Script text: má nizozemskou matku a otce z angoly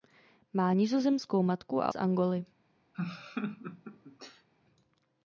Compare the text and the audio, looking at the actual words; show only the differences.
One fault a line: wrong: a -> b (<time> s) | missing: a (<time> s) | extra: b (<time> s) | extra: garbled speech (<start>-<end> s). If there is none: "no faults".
missing: otce (1.9 s)